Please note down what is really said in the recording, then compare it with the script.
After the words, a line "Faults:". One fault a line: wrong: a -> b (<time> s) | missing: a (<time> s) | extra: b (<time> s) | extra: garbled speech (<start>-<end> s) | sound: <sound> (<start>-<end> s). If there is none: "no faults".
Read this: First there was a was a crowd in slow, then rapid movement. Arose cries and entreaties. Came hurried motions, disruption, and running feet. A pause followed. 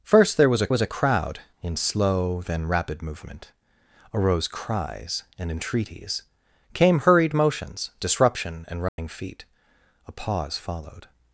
First there was a was a crowd in slow, then rapid movement. Arose cries and entreaties. Came hurried motions, disruption, and running feet. A pause followed.
Faults:
sound: dropout (8.9-9.0 s)